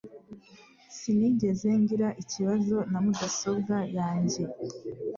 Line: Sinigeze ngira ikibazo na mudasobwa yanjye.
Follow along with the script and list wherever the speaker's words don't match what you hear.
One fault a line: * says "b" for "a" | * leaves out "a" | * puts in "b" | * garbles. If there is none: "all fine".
all fine